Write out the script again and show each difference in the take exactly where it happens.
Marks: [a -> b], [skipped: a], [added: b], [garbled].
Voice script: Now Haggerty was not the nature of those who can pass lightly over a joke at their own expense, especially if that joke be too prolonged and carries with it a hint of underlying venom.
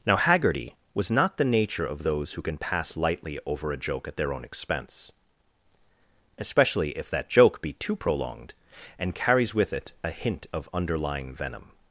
Now Haggerty was not the nature of those who can pass lightly over a joke at their own expense, especially if that joke be too prolonged and carries with it a hint of underlying venom.